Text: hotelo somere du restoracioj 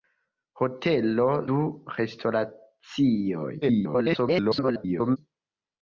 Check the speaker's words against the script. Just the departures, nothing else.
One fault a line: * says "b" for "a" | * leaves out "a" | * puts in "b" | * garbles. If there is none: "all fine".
* leaves out "somere"
* garbles